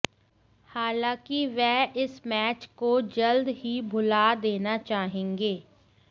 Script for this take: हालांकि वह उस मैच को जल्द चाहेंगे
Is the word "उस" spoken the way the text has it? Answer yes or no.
no